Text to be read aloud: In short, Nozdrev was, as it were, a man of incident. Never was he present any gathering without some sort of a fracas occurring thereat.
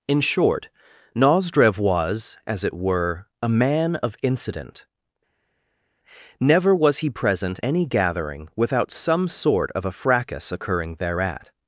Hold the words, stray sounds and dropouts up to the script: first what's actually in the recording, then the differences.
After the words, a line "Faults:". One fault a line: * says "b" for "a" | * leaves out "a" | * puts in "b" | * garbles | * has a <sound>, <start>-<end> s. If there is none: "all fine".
In short, Nozdrev was, as it were, a man of incident. Never was he present any gathering without some sort of a fracas occurring thereat.
Faults:
all fine